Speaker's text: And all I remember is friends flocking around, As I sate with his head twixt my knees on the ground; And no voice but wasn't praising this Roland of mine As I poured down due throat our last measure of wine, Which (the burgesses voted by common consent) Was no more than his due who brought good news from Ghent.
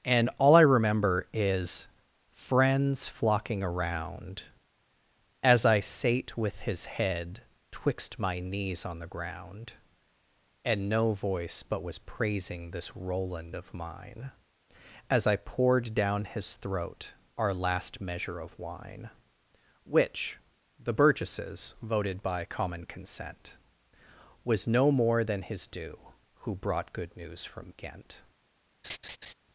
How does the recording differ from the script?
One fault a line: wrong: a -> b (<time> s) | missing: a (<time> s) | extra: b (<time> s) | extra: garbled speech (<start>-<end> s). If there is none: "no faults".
wrong: wasn't -> was (11.8 s)
wrong: due -> his (16.2 s)